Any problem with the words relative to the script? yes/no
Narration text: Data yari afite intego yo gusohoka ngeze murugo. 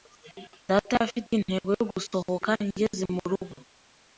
yes